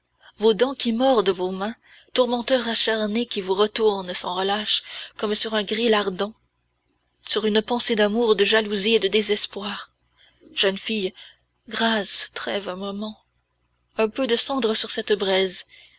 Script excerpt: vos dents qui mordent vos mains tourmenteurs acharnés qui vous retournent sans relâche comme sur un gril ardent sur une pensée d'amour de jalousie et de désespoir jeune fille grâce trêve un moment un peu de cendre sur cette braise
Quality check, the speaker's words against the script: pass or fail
pass